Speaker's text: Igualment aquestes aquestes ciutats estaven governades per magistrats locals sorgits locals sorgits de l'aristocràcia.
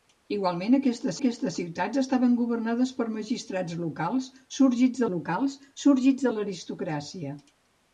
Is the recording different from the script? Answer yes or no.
no